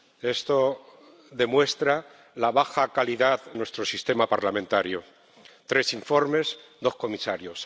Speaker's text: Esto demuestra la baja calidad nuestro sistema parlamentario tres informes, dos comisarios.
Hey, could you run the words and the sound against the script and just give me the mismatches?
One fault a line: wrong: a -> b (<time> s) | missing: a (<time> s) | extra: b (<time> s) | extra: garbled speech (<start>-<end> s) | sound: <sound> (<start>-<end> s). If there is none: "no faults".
no faults